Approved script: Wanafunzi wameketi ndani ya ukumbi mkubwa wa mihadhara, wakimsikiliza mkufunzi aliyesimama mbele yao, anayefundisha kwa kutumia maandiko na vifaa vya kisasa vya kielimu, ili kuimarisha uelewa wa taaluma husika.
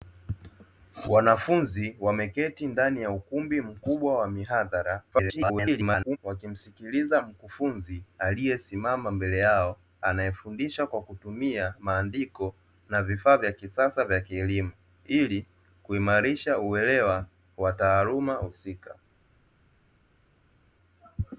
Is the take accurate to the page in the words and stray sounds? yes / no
no